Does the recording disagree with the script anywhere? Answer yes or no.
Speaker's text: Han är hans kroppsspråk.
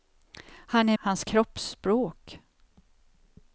no